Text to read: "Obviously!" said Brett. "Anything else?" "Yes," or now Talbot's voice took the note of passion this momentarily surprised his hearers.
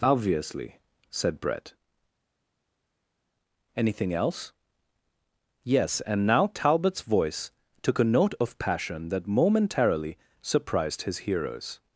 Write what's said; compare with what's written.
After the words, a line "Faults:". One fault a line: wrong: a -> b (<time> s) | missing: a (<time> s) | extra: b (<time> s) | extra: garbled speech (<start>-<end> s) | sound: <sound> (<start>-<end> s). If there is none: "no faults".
"Obviously!" said Brett. "Anything else?" "Yes," and now Talbot's voice took a note of passion that momentarily surprised his hearers.
Faults:
wrong: or -> and (6.0 s)
wrong: the -> a (8.0 s)
wrong: this -> that (9.1 s)